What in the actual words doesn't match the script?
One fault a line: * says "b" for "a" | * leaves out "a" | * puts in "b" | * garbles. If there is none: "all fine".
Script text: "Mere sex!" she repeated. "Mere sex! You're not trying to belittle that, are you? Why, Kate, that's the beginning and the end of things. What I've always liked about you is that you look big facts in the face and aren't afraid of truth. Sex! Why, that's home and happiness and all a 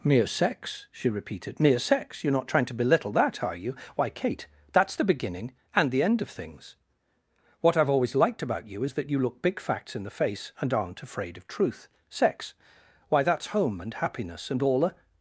all fine